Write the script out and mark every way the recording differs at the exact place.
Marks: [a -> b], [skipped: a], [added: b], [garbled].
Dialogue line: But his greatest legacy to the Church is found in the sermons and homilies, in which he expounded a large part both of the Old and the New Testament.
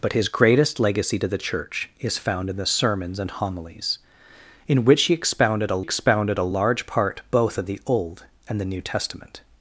But his greatest legacy to the Church is found in the sermons and homilies, in which he expounded a [added: expounded a] large part both of the Old and the New Testament.